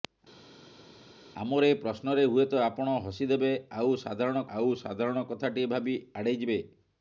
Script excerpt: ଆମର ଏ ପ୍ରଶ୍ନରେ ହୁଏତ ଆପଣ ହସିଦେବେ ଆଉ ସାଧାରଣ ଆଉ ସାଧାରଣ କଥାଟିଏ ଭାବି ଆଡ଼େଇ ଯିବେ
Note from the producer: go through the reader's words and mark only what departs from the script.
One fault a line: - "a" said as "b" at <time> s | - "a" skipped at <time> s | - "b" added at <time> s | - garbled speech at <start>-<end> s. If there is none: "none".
none